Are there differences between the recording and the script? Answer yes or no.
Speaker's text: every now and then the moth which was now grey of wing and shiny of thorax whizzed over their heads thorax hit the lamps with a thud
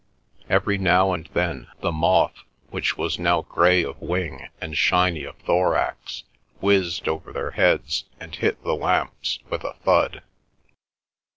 yes